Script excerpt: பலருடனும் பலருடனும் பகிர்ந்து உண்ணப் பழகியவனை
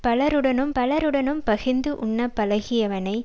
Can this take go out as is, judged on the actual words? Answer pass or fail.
pass